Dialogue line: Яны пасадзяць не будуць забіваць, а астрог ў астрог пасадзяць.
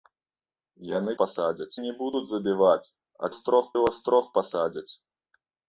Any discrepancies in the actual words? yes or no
no